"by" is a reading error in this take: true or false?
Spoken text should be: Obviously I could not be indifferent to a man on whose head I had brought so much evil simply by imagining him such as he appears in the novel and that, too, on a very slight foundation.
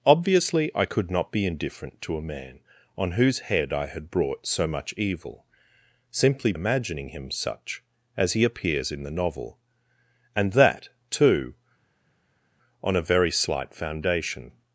true